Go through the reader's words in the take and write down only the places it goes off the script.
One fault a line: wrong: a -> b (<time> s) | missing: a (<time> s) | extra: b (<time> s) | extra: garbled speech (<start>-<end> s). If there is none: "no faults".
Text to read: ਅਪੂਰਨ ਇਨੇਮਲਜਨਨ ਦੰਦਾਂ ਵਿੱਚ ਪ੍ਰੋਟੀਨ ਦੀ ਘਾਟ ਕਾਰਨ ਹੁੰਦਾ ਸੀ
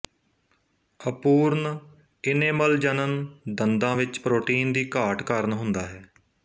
wrong: ਸੀ -> ਹੈ (5.9 s)